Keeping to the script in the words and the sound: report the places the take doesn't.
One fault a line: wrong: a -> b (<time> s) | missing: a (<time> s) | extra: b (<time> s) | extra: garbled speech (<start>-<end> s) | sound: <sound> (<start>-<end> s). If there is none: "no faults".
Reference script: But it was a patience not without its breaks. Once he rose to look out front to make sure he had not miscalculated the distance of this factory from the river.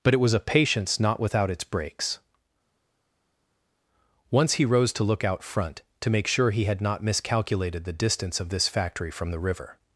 no faults